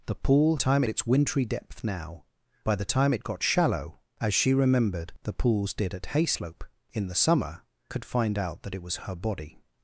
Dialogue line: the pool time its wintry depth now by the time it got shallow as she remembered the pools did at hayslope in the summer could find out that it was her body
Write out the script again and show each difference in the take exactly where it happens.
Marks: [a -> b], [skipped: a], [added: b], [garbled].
the pool time its wintry depth now by the time it got shallow as she remembered the pools did at hayslope in the summer could find out that it was her body